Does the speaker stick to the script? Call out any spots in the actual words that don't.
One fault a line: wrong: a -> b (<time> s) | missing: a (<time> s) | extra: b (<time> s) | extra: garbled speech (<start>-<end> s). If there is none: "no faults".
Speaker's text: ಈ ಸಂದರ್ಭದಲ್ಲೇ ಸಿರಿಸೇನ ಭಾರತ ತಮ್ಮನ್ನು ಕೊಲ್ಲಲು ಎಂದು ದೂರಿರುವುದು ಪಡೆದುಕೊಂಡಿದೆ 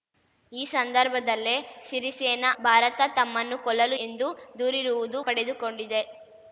no faults